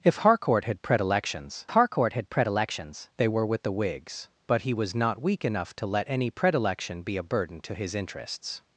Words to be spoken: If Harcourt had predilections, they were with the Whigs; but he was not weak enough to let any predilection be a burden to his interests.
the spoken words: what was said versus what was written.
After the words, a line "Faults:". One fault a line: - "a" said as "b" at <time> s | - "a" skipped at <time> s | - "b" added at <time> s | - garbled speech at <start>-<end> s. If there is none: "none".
If Harcourt had predilections Harcourt had predilections, they were with the Whigs; but he was not weak enough to let any predilection be a burden to his interests.
Faults:
- "Harcourt had predilections" added at 1.7 s